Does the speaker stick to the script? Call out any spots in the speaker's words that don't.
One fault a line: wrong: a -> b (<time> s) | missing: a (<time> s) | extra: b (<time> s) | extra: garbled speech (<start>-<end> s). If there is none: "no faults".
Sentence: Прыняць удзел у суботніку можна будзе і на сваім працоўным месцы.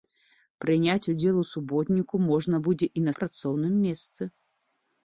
missing: сваім (3.1 s)